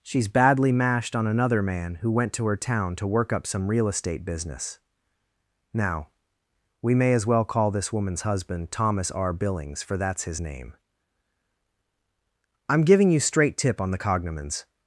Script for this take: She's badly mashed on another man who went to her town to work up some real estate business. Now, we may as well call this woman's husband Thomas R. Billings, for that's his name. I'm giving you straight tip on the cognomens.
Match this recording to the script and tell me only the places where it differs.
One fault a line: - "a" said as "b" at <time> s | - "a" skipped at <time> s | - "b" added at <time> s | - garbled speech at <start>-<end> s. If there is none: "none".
none